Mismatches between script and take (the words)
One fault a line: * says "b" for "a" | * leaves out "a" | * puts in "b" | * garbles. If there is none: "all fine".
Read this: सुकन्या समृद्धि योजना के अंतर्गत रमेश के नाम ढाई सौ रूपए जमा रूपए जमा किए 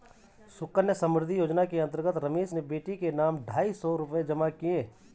* puts in "ने बेटी"
* leaves out "रूपए जमा"